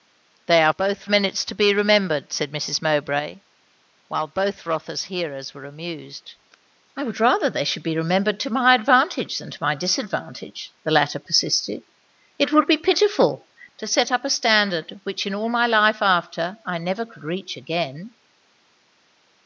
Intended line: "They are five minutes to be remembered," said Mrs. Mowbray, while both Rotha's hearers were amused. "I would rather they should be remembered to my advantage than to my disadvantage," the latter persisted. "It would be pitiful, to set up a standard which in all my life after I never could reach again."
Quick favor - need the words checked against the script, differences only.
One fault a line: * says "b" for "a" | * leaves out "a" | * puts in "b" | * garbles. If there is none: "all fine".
* says "both" for "five"